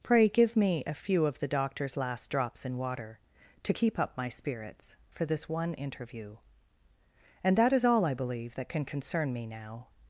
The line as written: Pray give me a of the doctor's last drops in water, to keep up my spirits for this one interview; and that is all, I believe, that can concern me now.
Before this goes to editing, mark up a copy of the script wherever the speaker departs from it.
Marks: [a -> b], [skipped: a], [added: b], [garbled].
Pray give me a [added: few] of the doctor's last drops in water, to keep up my spirits for this one interview; and that is all, I believe, that can concern me now.